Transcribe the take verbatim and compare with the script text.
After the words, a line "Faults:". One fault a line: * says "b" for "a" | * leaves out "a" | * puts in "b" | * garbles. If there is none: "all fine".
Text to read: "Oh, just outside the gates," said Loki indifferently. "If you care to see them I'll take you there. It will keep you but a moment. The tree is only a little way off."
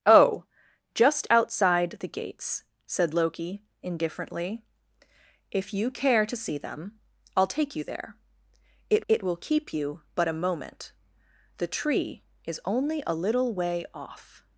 "Oh, just outside the gates," said Loki indifferently. "If you care to see them I'll take you there. It it will keep you but a moment. The tree is only a little way off."
Faults:
* puts in "it"